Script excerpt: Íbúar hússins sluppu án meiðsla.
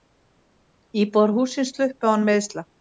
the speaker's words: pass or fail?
pass